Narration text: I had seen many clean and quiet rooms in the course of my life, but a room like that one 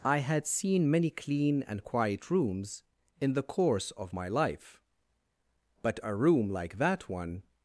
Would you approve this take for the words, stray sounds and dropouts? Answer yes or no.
yes